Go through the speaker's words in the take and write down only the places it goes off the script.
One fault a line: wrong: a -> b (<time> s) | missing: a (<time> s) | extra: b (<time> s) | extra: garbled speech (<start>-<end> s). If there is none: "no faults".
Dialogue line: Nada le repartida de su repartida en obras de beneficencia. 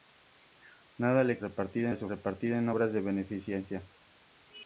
no faults